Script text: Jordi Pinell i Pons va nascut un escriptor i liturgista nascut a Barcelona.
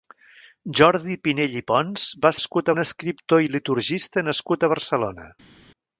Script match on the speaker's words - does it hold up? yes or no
yes